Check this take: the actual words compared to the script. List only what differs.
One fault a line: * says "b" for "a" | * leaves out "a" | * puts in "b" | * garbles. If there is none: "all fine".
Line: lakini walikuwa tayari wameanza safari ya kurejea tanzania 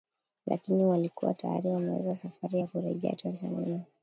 all fine